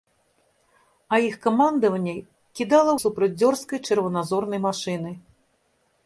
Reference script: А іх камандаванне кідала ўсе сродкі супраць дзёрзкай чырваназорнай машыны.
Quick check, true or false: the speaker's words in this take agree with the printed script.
false